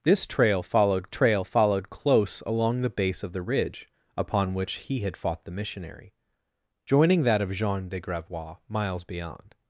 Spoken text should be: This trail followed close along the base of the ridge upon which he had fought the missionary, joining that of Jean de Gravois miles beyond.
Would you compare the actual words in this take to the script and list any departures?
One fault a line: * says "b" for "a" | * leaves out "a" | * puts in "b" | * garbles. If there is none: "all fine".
* puts in "trail followed"